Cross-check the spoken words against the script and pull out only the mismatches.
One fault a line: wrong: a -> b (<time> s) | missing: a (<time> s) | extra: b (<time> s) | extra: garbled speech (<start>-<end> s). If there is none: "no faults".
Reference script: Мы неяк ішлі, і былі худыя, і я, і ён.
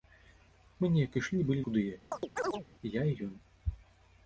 no faults